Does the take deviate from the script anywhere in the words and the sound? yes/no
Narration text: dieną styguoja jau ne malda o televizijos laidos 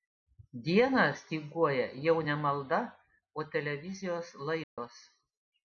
yes